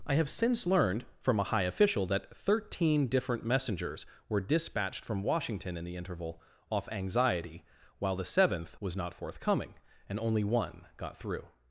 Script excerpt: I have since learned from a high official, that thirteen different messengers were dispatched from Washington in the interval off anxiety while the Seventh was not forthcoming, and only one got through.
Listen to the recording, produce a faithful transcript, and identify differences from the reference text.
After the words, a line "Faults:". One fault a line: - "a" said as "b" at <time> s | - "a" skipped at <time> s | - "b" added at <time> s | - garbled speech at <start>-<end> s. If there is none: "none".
I have since learned from a high official, that thirteen different messengers were dispatched from Washington in the interval off anxiety while the Seventh was not forthcoming, and only one got through.
Faults:
none